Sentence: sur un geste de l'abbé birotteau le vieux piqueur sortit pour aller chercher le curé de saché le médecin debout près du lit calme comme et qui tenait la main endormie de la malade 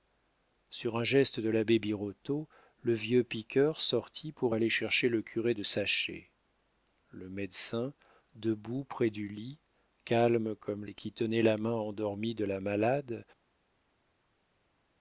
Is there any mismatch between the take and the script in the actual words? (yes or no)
no